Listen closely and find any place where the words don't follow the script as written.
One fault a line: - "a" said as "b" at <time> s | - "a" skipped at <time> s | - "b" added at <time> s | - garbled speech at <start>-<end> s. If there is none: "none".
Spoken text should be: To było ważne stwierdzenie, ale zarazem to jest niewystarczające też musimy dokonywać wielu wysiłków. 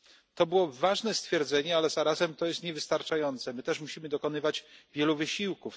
- "my" added at 3.5 s